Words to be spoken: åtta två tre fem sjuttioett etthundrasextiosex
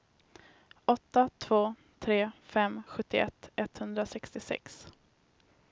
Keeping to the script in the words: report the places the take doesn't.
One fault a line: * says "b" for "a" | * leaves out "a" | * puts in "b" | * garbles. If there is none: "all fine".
all fine